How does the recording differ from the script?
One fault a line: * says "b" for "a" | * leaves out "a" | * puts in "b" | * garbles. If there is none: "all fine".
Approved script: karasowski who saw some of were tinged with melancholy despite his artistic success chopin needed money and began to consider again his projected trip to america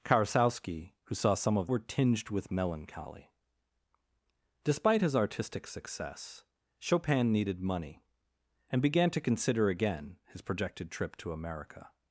all fine